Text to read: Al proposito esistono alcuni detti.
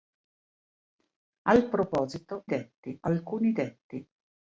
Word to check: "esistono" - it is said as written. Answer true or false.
false